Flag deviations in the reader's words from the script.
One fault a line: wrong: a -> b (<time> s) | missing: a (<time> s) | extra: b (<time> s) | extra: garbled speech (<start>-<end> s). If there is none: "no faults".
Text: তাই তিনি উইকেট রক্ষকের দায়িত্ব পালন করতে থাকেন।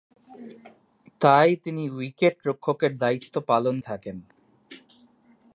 missing: করতে (3.8 s)